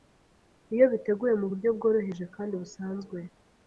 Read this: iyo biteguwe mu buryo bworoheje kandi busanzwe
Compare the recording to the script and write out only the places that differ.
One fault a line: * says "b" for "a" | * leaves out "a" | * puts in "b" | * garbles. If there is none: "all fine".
all fine